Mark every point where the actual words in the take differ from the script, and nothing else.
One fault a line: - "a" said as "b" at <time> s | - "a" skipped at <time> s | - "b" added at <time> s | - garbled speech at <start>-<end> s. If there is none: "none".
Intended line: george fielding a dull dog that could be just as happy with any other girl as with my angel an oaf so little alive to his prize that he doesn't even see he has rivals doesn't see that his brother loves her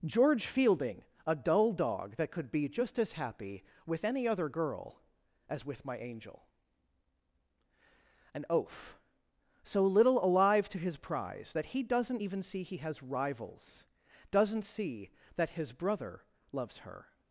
none